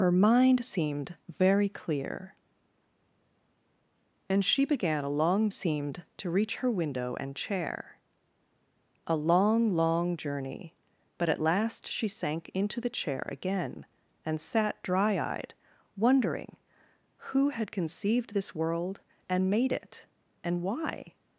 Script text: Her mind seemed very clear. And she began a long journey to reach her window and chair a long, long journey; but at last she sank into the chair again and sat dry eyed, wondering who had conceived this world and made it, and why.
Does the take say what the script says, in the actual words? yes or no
no